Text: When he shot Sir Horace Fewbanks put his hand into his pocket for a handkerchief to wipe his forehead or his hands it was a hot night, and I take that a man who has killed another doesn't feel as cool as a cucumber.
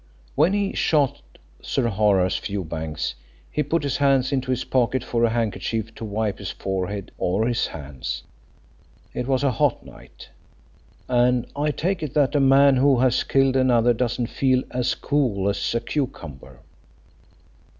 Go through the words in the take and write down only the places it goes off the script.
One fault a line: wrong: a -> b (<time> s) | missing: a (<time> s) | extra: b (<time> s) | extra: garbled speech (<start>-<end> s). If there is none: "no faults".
extra: he (3.5 s)
extra: it (12.0 s)